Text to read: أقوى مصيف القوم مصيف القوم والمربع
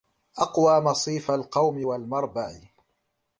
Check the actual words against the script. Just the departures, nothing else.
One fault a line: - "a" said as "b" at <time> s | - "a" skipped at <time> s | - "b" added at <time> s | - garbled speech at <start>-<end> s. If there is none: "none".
- "مصيف القوم" skipped at 1.9 s